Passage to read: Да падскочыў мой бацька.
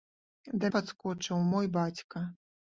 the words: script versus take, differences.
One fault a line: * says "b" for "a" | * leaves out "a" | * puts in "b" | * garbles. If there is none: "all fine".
all fine